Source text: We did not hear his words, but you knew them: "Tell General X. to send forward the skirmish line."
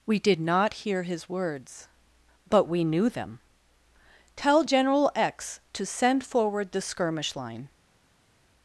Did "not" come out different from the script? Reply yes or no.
no